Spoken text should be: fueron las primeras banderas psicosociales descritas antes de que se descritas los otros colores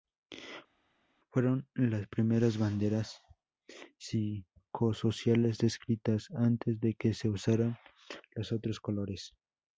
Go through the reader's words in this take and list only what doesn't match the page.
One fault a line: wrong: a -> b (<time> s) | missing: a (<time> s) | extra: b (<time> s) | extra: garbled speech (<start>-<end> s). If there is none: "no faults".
wrong: descritas -> usaran (7.3 s)